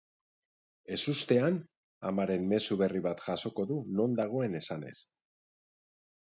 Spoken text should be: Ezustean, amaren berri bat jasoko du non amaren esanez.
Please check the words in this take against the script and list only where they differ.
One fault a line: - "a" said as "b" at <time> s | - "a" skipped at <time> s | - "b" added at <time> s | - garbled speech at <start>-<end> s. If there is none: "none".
- "mezu" added at 2.5 s
- "amaren" said as "dagoen" at 4.2 s